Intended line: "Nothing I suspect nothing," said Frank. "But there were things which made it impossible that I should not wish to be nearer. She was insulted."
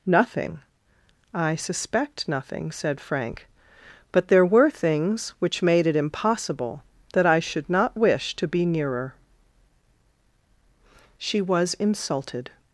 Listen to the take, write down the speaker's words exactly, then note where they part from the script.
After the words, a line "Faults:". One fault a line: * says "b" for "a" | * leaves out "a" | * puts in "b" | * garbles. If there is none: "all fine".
"Nothing I suspect nothing," said Frank. "But there were things which made it impossible that I should not wish to be nearer. She was insulted."
Faults:
all fine